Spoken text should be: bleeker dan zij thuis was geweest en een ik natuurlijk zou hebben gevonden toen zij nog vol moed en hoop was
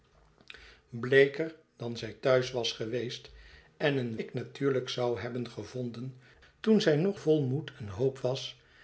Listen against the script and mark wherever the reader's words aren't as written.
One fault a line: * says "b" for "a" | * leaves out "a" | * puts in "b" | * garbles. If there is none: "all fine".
all fine